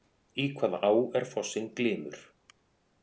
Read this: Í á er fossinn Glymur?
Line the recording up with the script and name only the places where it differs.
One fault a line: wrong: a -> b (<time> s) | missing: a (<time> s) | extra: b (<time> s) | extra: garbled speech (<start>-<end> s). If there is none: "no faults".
extra: hvaða (0.6 s)